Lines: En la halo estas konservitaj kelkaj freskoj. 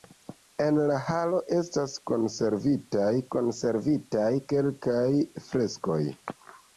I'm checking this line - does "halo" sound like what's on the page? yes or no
yes